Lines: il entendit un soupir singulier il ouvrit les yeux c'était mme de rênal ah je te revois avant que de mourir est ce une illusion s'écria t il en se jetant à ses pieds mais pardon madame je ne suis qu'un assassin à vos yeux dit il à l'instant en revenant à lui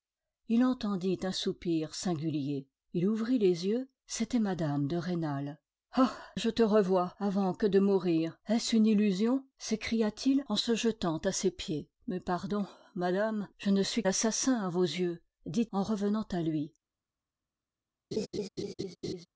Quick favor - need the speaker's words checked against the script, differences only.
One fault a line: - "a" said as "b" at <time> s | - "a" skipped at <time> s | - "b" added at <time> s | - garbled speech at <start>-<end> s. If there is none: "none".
- "qu'un" skipped at 14.0 s
- "il à l'instant" skipped at 15.7 s